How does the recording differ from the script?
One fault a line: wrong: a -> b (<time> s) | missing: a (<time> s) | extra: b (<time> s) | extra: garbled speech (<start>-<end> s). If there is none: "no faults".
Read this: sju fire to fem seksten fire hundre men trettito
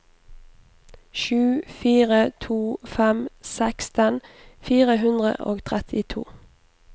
wrong: men -> og (5.4 s)